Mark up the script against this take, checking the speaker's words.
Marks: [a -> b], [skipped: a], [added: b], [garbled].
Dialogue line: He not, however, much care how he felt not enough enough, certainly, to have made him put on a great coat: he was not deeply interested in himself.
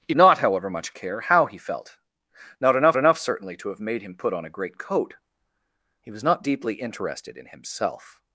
He not, however, much care how he felt not enough enough, certainly, to have made him put on a great coat: he was not deeply interested in himself.